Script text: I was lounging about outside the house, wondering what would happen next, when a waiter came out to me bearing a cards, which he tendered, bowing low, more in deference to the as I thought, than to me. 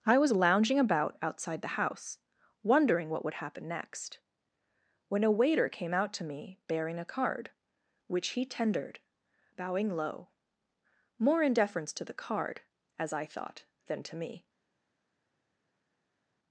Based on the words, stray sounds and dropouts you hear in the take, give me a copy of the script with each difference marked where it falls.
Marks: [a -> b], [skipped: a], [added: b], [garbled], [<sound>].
I was lounging about outside the house, wondering what would happen next, when a waiter came out to me bearing a [cards, -> card] which he tendered, bowing low, more in deference to the [added: card] as I thought, than to me.